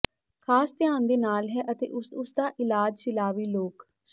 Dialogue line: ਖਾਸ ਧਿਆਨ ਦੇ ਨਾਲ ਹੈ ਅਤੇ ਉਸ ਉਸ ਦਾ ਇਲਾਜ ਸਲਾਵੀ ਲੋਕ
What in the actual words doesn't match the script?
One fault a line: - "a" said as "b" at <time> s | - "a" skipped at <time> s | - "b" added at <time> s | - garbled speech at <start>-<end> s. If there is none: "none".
none